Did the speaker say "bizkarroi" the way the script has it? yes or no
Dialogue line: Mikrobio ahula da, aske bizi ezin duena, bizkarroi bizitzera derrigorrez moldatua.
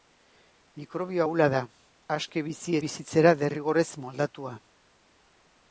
no